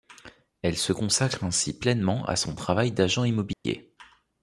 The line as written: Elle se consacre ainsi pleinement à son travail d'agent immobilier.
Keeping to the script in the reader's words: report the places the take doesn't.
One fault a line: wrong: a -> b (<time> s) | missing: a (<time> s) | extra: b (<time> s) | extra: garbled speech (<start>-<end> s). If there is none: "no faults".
no faults